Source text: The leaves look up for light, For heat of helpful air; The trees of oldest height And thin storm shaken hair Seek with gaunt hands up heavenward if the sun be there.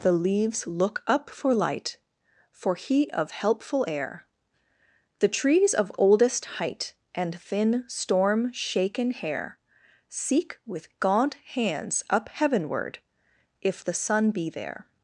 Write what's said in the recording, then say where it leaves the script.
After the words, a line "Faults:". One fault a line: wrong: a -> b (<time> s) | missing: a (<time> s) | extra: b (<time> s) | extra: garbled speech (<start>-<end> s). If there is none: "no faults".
The leaves look up for light, For heat of helpful air; The trees of oldest height And thin storm shaken hair Seek with gaunt hands up heavenward if the sun be there.
Faults:
no faults